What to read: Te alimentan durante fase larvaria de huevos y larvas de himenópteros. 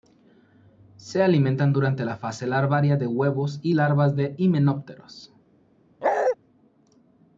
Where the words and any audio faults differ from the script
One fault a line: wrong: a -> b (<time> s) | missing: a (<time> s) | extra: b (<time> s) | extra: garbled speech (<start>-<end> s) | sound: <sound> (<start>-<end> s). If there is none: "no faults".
wrong: Te -> Se (1.0 s)
extra: la (2.0 s)
sound: bark (6.0-6.4 s)